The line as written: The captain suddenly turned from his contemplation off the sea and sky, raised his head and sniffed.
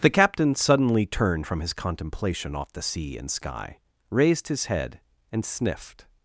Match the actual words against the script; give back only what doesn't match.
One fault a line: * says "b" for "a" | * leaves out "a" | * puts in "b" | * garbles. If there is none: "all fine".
all fine